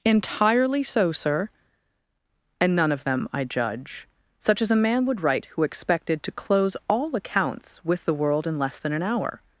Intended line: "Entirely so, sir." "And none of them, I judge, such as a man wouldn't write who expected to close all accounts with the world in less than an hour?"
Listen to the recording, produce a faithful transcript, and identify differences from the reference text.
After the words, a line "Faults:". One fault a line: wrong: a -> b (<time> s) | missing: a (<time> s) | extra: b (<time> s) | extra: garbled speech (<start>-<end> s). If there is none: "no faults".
"Entirely so, sir." "And none of them, I judge, such as a man would write who expected to close all accounts with the world in less than an hour?"
Faults:
wrong: wouldn't -> would (5.0 s)